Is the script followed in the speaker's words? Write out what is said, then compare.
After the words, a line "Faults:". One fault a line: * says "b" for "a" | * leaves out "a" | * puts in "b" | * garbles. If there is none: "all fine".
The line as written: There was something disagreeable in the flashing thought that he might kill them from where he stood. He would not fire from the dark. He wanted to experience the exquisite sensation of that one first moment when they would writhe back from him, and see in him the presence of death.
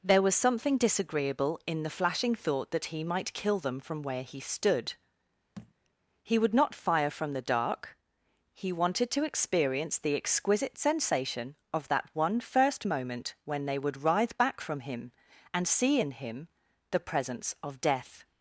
There was something disagreeable in the flashing thought that he might kill them from where he stood. He would not fire from the dark. He wanted to experience the exquisite sensation of that one first moment when they would writhe back from him, and see in him the presence of death.
Faults:
all fine